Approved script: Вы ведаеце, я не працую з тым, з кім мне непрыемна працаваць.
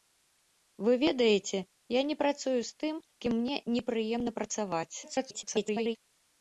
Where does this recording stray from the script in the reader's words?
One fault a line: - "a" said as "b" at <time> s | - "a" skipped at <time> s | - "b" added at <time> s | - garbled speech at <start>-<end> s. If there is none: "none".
- "з" skipped at 3.0 s
- garbled speech at 5.0-6.0 s